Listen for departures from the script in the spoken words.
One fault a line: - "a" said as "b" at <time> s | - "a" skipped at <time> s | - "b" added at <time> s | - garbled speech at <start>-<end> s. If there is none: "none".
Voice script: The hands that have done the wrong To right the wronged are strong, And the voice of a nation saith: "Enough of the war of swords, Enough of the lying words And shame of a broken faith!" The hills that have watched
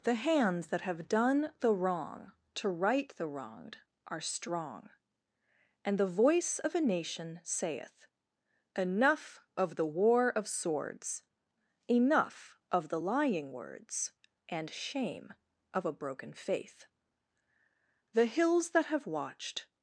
none